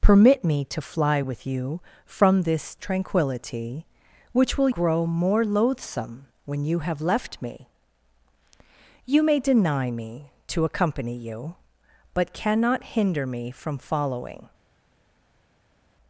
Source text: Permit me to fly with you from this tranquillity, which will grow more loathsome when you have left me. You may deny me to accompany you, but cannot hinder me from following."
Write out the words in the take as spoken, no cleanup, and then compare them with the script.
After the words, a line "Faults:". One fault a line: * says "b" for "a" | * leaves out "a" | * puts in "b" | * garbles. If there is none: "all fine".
Permit me to fly with you from this tranquillity, which will grow more loathsome when you have left me. You may deny me to accompany you, but cannot hinder me from following."
Faults:
all fine